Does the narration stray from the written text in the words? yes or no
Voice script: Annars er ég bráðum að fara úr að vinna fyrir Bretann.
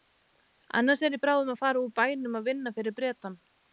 yes